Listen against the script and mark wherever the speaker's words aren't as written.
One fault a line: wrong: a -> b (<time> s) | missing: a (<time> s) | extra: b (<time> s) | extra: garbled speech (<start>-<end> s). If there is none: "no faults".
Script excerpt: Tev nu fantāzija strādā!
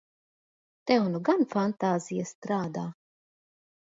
extra: gan (1.3 s)